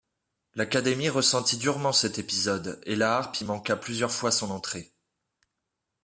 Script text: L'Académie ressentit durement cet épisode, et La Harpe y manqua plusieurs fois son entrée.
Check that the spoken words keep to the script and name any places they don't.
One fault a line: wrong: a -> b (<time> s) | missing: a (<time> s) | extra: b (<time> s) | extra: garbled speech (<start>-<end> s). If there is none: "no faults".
no faults